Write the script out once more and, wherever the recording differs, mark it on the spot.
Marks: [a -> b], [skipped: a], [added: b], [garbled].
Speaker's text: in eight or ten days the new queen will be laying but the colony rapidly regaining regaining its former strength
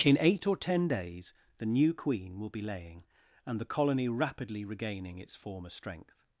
in eight or ten days the new queen will be laying [but -> and] the colony rapidly regaining [skipped: regaining] its former strength